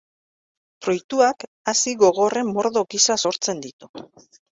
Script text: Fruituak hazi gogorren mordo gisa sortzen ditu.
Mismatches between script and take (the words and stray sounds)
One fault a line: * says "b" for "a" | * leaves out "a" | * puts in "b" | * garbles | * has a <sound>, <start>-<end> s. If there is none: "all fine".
all fine